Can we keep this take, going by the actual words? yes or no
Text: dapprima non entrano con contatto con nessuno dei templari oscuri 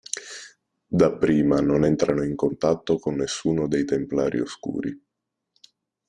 no